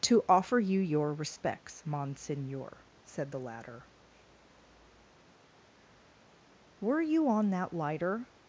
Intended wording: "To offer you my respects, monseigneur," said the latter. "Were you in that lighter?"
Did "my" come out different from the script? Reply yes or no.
yes